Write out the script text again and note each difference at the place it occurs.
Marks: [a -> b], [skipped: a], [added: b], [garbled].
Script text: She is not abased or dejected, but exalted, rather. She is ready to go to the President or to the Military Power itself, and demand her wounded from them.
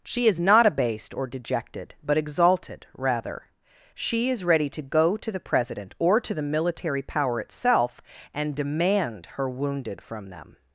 She is not abased or dejected, but exalted, rather. She is ready to go to the President or to the Military Power itself, and demand her wounded from them.